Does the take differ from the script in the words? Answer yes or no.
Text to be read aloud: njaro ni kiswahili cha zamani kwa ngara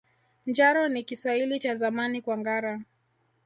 no